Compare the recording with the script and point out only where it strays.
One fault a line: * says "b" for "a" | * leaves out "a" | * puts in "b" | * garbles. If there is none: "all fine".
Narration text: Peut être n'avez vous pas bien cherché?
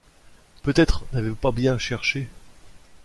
all fine